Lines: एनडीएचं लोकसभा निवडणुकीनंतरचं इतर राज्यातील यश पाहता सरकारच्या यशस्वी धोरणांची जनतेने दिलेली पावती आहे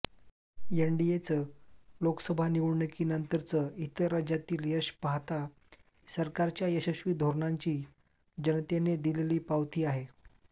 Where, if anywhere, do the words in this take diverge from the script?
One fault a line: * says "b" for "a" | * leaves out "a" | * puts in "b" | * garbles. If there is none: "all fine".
all fine